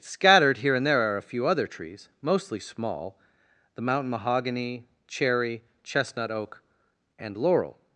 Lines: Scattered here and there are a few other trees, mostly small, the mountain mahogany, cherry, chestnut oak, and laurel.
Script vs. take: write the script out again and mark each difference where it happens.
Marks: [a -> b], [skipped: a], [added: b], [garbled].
Scattered here and there are a few other trees, mostly small, the mountain mahogany, cherry, chestnut oak, and laurel.